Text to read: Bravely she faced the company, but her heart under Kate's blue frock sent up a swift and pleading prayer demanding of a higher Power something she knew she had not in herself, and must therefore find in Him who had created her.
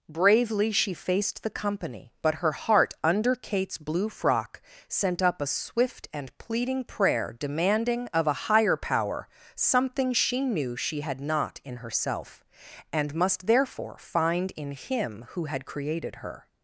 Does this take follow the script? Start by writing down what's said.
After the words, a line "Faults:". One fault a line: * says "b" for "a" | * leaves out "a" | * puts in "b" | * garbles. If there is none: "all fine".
Bravely she faced the company, but her heart under Kate's blue frock sent up a swift and pleading prayer demanding of a higher Power something she knew she had not in herself, and must therefore find in Him who had created her.
Faults:
all fine